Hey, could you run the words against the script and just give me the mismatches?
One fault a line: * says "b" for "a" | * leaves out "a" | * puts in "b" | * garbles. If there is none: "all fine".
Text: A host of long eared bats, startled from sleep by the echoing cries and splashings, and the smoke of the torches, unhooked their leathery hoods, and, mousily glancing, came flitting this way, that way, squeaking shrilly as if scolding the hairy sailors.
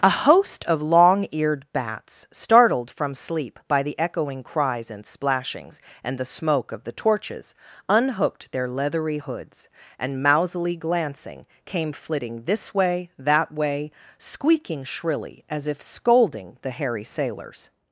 all fine